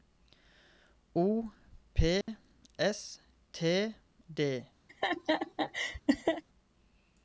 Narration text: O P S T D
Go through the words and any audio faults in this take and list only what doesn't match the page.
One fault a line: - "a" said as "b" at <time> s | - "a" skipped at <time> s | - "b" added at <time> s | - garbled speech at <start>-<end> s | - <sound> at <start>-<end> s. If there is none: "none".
- dropout at 2.2-2.3 s
- laugh at 4.9-6.4 s